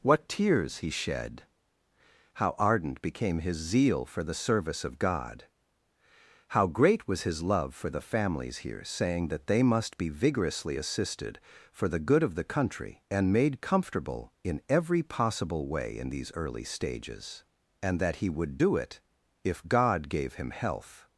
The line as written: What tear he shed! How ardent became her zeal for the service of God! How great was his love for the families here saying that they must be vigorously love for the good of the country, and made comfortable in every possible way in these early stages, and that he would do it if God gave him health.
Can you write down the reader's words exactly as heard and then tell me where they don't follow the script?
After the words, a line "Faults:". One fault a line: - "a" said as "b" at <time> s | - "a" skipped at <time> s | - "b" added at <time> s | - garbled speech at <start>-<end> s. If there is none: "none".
What tears he shed! How ardent became his zeal for the service of God! How great was his love for the families here saying that they must be vigorously assisted for the good of the country, and made comfortable in every possible way in these early stages, and that he would do it if God gave him health.
Faults:
- "tear" said as "tears" at 0.3 s
- "her" said as "his" at 3.4 s
- "love" said as "assisted" at 10.8 s